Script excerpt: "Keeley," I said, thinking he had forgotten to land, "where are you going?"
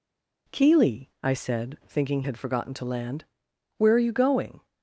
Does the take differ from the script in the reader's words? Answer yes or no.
yes